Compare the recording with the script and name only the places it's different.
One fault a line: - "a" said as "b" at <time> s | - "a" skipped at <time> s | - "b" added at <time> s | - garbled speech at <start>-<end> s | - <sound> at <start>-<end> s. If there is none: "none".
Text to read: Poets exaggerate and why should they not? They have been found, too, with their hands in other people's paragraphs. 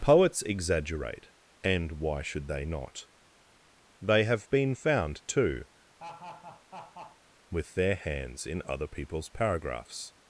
- laugh at 6.0-7.2 s